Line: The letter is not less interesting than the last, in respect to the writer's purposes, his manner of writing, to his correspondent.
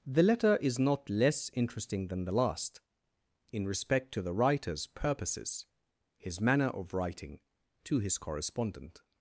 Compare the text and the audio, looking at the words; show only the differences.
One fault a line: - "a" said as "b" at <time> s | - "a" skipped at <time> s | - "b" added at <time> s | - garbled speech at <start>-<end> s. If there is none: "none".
none